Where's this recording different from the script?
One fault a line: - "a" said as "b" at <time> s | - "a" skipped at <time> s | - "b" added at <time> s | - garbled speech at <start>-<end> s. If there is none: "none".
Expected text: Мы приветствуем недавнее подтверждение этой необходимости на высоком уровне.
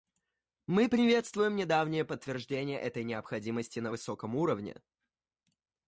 none